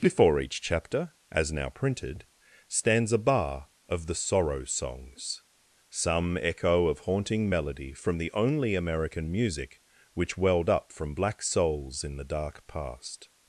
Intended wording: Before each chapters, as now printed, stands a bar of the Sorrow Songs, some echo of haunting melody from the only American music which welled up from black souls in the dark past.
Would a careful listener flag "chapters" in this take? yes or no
yes